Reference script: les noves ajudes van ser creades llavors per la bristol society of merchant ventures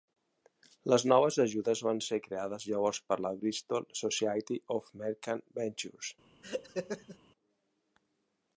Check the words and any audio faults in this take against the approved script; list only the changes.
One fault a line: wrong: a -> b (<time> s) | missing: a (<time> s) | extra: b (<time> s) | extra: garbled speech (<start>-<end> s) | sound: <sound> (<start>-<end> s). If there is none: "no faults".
sound: laugh (6.4-7.2 s)